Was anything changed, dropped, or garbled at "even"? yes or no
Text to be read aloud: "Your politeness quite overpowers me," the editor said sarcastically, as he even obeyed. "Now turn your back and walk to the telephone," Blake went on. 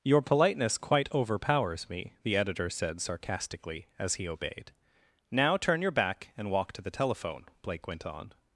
yes